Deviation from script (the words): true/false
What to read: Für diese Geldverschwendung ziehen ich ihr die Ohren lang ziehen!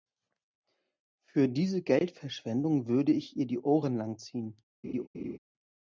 true